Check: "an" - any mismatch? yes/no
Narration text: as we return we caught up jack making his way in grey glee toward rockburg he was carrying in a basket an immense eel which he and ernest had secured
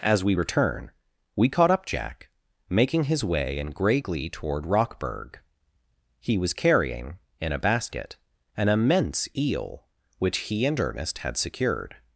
no